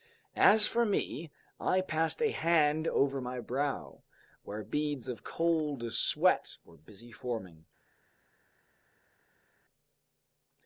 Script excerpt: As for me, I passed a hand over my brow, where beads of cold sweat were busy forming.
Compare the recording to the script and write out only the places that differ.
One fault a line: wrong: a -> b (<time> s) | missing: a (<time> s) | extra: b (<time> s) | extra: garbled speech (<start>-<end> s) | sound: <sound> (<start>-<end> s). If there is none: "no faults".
no faults